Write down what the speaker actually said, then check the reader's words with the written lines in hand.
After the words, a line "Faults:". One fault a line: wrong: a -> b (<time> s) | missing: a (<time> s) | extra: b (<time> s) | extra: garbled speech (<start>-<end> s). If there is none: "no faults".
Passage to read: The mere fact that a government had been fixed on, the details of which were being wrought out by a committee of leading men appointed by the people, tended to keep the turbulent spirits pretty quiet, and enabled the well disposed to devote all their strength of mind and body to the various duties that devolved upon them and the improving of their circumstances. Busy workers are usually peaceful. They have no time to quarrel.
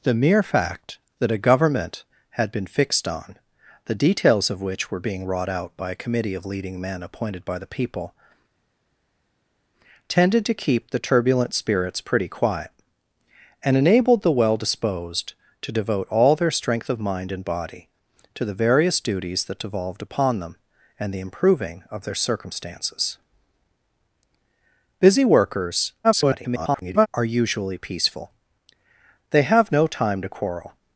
The mere fact that a government had been fixed on, the details of which were being wrought out by a committee of leading men appointed by the people, tended to keep the turbulent spirits pretty quiet, and enabled the well disposed to devote all their strength of mind and body to the various duties that devolved upon them and the improving of their circumstances. Busy workers [garbled] are usually peaceful. They have no time to quarrel.
Faults:
extra: garbled speech (26.0-27.1 s)